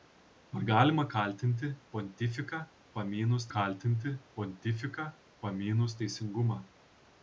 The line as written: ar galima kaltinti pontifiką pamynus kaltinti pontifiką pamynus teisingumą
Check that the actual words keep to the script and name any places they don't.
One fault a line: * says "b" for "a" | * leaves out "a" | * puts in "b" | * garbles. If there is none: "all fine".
all fine